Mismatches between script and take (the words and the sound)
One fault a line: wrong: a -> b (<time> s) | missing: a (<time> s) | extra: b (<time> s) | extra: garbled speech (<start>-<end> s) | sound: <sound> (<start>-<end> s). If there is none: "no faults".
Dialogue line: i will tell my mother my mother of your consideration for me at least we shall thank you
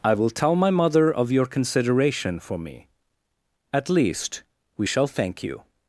missing: my mother (1.1 s)